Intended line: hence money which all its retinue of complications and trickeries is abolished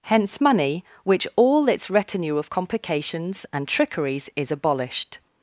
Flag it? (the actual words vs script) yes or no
no